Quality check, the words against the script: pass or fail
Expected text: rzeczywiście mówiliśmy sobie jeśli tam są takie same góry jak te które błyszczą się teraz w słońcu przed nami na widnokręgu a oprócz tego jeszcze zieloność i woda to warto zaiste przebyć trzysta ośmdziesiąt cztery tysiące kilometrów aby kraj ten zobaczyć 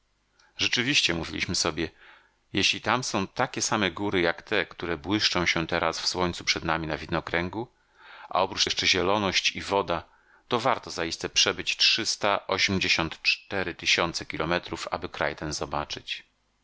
fail